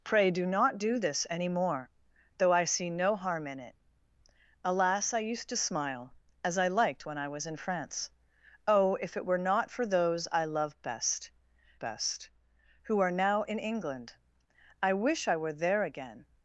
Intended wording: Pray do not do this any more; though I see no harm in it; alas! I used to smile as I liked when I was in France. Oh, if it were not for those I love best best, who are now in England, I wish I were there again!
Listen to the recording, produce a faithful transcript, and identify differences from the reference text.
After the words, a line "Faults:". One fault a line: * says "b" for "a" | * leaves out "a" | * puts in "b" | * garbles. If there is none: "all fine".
Pray do not do this any more; though I see no harm in it; alas! I used to smile as I liked when I was in France. Oh, if it were not for those I love best best, who are now in England, I wish I were there again!
Faults:
all fine